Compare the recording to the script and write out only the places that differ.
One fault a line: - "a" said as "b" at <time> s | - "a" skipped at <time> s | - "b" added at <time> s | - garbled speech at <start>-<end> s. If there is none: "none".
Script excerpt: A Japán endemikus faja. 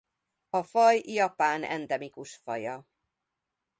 - "faj" added at 0.6 s